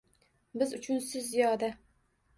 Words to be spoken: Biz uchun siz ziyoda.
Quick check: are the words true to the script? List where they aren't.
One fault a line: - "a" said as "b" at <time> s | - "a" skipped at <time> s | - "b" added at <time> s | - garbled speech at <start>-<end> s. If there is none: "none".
none